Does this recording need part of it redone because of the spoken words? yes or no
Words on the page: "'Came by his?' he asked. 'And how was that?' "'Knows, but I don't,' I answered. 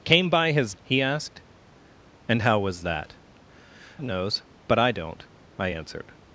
no